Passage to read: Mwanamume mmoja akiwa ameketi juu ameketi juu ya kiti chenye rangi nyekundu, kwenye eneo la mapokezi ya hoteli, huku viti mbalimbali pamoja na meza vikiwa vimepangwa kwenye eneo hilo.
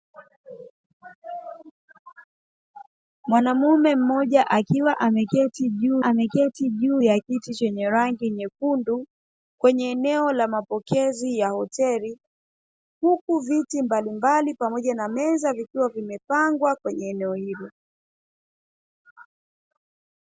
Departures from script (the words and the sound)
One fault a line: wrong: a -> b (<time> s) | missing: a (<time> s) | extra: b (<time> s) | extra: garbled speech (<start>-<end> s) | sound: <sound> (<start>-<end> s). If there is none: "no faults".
no faults